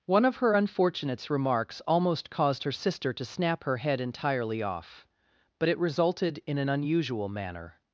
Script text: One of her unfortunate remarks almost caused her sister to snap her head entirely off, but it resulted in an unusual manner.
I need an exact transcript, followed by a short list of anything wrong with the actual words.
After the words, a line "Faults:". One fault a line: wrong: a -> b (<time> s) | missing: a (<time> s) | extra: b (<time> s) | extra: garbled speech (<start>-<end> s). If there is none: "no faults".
One of her unfortunates remarks almost caused her sister to snap her head entirely off, but it resulted in an unusual manner.
Faults:
wrong: unfortunate -> unfortunates (0.5 s)